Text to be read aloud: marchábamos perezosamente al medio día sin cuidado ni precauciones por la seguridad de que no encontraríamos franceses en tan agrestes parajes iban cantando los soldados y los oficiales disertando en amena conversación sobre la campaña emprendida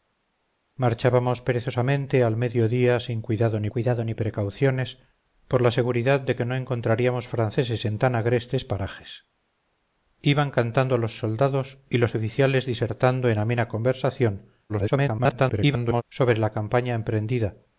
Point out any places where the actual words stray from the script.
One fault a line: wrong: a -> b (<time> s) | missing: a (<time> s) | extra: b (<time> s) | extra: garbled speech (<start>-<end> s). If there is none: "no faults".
extra: cuidado ni (3.7 s)
extra: garbled speech (14.7-16.0 s)